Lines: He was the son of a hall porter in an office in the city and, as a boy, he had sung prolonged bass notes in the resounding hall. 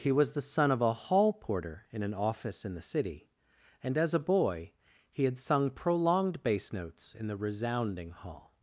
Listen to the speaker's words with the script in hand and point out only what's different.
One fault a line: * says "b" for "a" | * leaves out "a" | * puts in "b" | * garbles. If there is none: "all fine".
all fine